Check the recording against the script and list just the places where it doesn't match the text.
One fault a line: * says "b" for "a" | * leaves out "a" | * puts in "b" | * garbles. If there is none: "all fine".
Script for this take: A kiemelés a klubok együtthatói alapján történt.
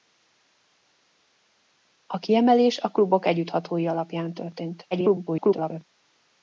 * garbles